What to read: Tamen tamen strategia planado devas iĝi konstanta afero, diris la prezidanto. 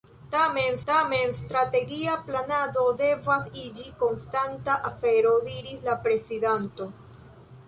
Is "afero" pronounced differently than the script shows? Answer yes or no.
no